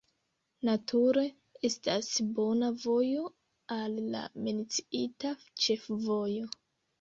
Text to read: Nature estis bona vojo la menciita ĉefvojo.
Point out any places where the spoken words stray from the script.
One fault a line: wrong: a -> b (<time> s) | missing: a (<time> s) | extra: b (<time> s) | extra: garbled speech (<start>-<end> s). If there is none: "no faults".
wrong: estis -> estas (1.7 s)
extra: al (3.8 s)